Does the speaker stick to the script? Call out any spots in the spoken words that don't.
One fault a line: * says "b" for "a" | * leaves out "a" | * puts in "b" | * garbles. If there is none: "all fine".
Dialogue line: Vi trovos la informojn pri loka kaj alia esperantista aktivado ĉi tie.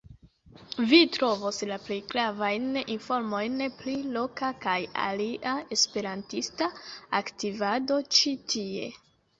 * puts in "plej gravajn"